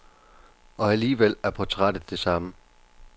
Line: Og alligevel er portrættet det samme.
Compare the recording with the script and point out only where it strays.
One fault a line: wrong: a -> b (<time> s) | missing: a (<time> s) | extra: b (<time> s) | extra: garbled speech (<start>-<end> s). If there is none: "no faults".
no faults